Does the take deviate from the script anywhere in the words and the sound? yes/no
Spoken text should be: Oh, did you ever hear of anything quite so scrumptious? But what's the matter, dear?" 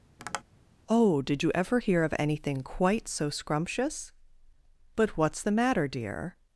yes